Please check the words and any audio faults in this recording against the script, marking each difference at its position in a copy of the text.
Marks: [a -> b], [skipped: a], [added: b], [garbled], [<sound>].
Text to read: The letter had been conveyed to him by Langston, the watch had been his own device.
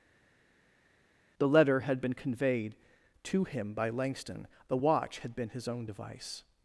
The letter had been conveyed to him by Langston, the watch had been his own device.